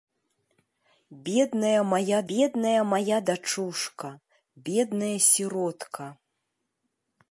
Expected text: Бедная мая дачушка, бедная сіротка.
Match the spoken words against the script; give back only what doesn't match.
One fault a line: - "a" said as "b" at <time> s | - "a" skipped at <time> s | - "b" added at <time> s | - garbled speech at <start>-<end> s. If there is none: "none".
- "бедная мая" added at 2.3 s